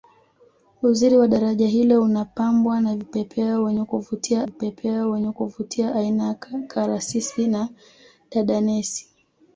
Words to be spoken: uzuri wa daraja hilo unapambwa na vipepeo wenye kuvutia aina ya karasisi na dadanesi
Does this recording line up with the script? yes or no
no